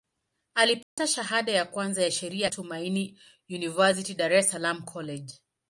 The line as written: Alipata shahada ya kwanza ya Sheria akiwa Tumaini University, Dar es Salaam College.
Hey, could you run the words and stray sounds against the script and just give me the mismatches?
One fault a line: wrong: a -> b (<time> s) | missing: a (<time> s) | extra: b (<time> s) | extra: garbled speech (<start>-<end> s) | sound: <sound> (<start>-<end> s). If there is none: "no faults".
sound: dropout (0.8-1.0 s)
missing: akiwa (2.5 s)